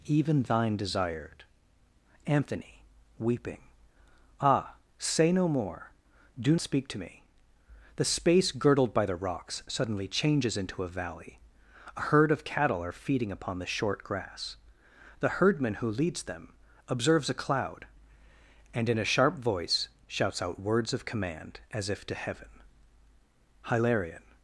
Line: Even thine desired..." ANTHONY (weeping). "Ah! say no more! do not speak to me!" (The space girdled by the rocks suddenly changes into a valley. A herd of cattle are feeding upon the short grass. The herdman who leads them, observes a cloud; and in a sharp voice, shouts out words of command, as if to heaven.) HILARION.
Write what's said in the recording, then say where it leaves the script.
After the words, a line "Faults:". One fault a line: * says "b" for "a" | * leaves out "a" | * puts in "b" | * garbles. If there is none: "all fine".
Even thine desired..." ANTHONY (weeping). "Ah! say no more! do speak to me!" (The space girdled by the rocks suddenly changes into a valley. A herd of cattle are feeding upon the short grass. The herdman who leads them, observes a cloud; and in a sharp voice, shouts out words of command, as if to heaven.) HILARION.
Faults:
* leaves out "not"